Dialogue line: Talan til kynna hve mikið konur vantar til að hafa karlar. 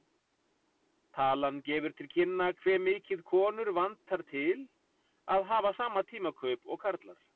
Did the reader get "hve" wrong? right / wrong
right